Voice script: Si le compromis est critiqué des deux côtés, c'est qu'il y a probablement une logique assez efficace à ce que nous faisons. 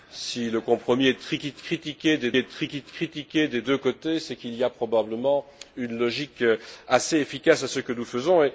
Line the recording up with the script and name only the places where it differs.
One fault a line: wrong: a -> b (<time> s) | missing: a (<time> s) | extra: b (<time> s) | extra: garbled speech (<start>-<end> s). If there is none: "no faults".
extra: est critiqué des (2.4 s)